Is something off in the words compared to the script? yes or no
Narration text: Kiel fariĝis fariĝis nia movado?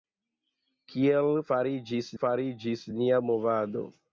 no